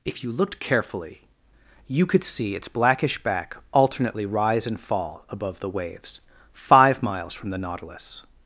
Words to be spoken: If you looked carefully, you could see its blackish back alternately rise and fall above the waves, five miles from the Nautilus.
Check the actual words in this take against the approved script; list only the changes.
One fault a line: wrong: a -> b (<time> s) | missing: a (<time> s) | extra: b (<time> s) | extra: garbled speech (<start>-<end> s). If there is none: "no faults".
no faults